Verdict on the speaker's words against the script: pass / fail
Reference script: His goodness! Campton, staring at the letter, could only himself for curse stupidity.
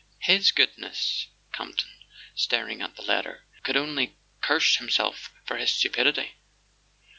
fail